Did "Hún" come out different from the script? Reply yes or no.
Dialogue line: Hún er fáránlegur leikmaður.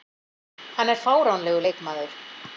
yes